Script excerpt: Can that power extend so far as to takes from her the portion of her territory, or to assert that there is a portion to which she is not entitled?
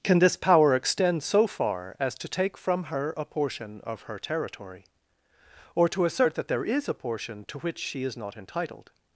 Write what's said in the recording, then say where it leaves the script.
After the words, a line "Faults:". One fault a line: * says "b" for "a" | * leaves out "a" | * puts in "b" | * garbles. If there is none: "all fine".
Can this power extend so far as to take from her a portion of her territory, or to assert that there is a portion to which she is not entitled?
Faults:
* says "this" for "that"
* says "take" for "takes"
* says "a" for "the"